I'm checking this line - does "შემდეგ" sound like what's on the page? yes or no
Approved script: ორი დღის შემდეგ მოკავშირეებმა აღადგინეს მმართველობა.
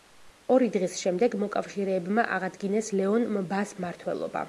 yes